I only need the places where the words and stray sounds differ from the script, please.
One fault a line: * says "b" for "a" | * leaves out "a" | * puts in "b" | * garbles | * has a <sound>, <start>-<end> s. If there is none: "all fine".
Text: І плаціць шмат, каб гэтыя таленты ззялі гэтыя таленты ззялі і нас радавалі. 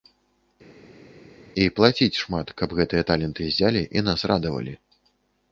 * leaves out "гэтыя таленты ззялі"